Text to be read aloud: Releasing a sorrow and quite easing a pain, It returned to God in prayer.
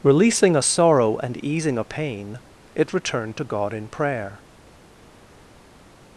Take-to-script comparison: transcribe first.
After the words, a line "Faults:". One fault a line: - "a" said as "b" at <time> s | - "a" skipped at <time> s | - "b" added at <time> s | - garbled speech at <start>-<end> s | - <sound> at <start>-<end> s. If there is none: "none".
Releasing a sorrow and easing a pain, It returned to God in prayer.
Faults:
- "quite" skipped at 1.4 s